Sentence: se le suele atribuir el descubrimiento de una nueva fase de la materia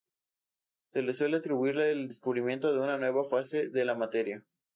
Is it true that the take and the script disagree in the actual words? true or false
false